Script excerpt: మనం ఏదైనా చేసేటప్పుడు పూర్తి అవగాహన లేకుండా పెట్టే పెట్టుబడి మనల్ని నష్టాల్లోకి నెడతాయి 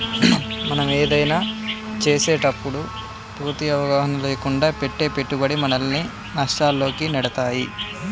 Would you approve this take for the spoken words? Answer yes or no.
yes